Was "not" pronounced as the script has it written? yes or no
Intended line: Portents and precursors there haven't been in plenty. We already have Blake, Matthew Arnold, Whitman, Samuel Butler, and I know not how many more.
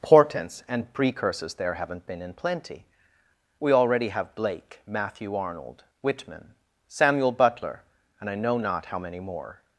yes